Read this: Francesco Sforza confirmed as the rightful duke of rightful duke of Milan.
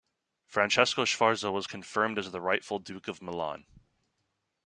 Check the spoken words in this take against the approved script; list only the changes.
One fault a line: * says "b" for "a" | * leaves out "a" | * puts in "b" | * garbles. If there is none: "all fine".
* puts in "was"
* leaves out "rightful duke of"